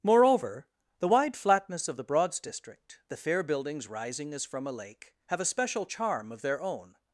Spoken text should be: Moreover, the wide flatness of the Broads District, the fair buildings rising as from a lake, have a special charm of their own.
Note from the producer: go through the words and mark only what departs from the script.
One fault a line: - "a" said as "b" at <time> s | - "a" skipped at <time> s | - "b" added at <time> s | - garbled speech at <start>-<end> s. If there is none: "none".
none